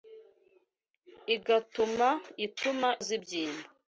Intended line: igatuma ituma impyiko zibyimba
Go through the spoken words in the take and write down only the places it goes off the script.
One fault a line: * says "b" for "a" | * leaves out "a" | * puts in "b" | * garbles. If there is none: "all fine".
* leaves out "impyiko"